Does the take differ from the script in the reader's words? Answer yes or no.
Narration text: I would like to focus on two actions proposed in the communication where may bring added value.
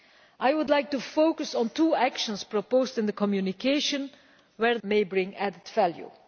no